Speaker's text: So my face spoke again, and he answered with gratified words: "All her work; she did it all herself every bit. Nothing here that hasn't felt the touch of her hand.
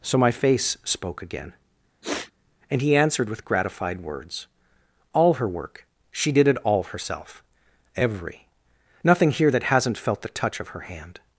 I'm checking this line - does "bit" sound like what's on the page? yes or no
no